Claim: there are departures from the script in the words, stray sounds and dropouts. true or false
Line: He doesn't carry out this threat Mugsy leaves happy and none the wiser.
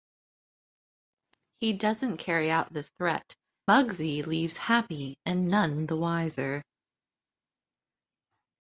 false